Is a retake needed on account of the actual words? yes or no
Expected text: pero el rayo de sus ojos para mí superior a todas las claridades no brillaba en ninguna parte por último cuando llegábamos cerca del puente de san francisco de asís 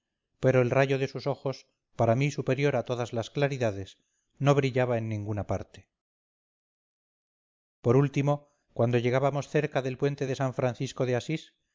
no